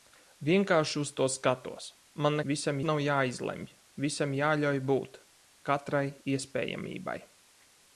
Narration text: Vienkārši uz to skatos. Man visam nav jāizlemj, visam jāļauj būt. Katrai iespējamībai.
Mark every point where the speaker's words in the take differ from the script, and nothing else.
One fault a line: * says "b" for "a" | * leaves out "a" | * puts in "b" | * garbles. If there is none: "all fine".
all fine